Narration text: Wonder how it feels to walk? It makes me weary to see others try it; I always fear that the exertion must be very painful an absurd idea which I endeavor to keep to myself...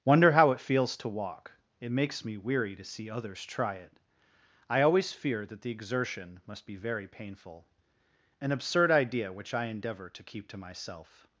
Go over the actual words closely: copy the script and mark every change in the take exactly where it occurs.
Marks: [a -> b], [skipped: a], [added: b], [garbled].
Wonder how it feels to walk? It makes me weary to see others try it; I always fear that the exertion must be very painful an absurd idea which I endeavor to keep to myself...